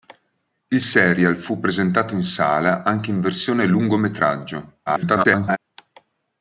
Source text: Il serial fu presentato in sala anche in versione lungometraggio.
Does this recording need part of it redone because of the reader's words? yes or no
yes